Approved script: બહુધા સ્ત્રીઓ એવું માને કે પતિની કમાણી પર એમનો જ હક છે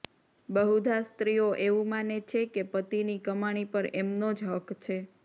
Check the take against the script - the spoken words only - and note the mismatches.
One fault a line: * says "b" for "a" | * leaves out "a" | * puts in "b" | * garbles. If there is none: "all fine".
* puts in "છે"